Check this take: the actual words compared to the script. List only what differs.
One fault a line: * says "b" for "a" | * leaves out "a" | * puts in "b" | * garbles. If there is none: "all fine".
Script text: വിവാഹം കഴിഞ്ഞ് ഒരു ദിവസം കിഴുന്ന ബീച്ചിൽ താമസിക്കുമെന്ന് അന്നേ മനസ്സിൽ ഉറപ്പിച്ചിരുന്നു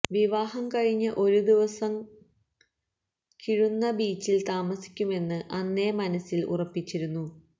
all fine